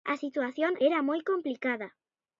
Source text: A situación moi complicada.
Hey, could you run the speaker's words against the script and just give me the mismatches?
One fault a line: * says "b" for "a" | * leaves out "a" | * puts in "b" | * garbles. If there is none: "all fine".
* puts in "era"